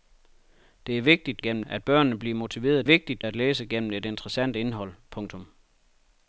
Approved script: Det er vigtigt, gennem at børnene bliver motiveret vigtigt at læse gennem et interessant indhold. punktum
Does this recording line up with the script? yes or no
yes